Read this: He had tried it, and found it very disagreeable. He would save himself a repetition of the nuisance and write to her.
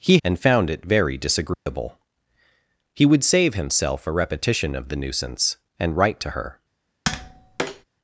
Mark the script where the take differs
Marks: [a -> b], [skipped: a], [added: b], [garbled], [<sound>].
He [skipped: had tried it,] and found it very disagreeable. [dropout] He would save himself a repetition of the nuisance and write to her. [tap]